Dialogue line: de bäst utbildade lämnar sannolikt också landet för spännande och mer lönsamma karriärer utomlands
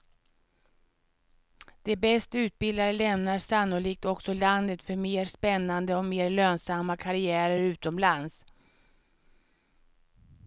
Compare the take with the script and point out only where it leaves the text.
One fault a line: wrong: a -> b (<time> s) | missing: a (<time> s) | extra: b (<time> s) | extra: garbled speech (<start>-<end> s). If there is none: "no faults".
extra: mer (5.0 s)